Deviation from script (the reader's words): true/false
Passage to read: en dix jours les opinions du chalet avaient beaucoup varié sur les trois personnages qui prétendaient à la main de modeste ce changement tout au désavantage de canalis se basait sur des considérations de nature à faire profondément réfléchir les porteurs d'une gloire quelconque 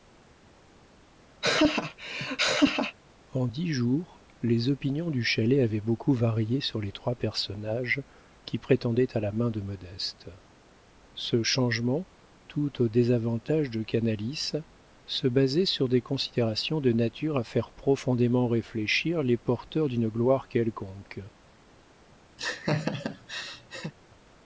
false